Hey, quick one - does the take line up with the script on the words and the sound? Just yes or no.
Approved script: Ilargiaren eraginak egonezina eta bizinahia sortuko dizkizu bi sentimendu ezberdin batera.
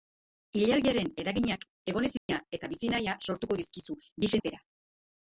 no